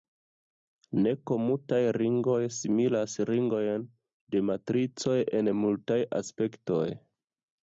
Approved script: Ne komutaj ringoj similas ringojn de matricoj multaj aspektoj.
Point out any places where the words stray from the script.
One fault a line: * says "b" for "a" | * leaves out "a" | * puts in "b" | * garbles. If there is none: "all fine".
* puts in "en"